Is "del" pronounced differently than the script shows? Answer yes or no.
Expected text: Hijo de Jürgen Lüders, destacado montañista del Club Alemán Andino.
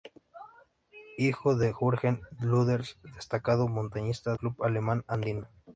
yes